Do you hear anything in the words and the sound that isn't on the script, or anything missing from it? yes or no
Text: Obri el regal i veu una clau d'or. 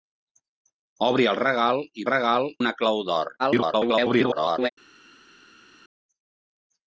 yes